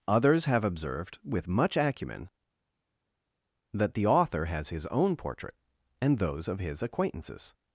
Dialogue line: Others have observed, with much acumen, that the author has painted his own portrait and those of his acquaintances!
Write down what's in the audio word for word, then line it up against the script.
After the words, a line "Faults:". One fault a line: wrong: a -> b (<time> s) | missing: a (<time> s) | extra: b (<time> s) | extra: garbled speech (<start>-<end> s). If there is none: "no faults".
Others have observed, with much acumen, that the author has his own portrait and those of his acquaintances!
Faults:
missing: painted (4.7 s)